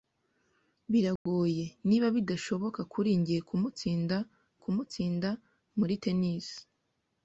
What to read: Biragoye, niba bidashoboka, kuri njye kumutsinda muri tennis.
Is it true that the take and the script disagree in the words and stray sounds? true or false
true